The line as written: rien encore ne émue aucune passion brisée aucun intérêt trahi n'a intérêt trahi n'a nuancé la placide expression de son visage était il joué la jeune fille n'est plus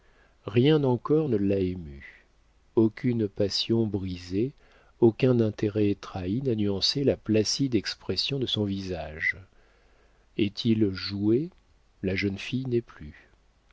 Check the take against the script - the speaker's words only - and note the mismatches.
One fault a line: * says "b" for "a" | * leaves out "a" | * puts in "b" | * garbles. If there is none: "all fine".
* puts in "l'a"
* leaves out "intérêt trahi n'a"
* says "est" for "était"